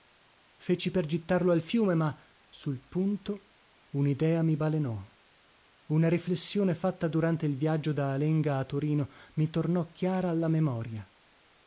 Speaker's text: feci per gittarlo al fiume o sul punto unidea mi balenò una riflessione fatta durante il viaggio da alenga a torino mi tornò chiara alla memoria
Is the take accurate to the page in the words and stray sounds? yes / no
no